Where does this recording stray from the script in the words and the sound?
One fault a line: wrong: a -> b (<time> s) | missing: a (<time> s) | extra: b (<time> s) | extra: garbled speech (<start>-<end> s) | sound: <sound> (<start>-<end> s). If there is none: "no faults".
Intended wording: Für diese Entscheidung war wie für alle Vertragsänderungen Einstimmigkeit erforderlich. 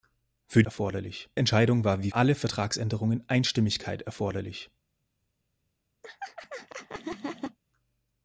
wrong: diese -> erforderlich (0.6 s)
missing: für (2.1 s)
sound: laugh (6.0-7.6 s)